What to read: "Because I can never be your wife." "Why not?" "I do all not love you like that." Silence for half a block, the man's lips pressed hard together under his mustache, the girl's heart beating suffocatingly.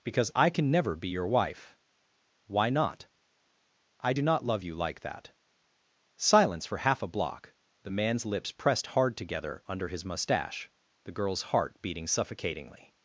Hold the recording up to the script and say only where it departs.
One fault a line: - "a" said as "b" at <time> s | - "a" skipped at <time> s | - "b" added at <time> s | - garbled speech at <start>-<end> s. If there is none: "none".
- "all" skipped at 4.2 s